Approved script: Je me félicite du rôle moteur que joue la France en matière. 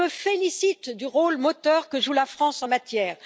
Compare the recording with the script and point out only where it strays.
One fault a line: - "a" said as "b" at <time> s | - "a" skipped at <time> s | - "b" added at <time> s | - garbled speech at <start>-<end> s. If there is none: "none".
none